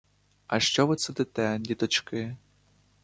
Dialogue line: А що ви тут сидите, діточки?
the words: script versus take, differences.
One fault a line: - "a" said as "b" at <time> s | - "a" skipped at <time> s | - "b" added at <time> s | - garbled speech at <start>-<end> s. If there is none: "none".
- "тут" skipped at 0.9 s